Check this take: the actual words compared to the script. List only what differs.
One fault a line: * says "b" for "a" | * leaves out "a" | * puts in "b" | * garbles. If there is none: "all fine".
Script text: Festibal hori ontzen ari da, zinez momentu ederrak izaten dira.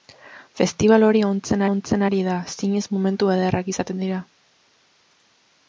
* puts in "ontzen"